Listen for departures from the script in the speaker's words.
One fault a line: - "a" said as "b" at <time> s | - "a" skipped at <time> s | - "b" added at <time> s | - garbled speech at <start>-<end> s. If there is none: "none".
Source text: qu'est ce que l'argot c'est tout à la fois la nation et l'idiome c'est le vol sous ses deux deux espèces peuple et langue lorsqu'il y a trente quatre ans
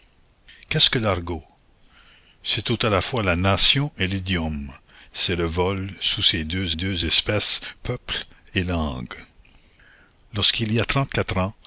none